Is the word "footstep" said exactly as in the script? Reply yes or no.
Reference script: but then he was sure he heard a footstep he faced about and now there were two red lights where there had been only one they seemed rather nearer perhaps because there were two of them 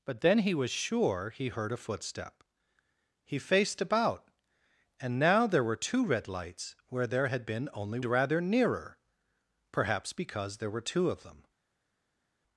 yes